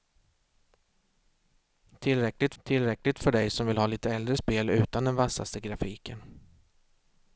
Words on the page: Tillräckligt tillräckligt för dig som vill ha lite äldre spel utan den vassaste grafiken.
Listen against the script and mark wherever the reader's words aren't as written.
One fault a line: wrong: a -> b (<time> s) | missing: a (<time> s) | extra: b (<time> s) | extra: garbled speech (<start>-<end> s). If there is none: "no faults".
no faults